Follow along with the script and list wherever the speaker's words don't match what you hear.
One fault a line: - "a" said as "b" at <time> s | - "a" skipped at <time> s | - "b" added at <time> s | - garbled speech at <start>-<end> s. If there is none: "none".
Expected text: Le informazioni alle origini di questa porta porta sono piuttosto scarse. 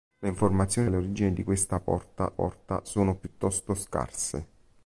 none